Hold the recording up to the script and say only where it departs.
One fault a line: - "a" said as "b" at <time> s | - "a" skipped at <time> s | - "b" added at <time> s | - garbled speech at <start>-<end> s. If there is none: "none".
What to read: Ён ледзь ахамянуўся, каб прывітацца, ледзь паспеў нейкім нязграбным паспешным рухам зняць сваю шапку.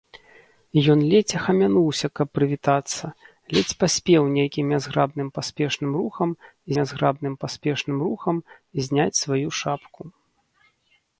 - "нязграбным паспешным рухам" added at 6.8 s